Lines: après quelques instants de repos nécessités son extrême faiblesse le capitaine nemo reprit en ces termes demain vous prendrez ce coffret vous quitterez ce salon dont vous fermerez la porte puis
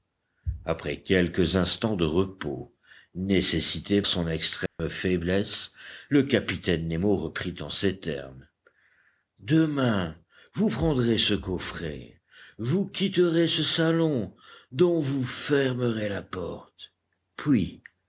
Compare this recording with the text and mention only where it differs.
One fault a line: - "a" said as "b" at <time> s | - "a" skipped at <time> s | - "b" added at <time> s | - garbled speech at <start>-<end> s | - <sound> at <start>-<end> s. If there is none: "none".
- dropout at 4.7-4.8 s